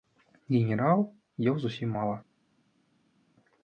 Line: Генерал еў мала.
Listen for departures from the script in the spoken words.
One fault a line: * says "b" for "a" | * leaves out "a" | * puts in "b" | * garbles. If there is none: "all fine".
* puts in "зусім"